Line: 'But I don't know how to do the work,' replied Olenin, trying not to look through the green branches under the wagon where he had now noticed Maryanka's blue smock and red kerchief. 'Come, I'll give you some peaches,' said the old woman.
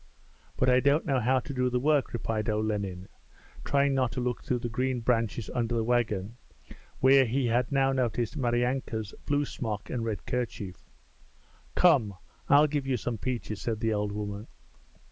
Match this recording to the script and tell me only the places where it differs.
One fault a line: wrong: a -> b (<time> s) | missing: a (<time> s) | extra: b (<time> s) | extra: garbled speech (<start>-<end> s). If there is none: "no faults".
no faults